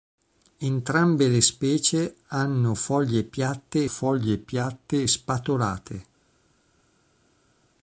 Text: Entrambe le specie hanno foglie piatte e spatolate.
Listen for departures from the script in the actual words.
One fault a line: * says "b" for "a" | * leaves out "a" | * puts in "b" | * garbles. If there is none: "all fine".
* puts in "foglie piatte"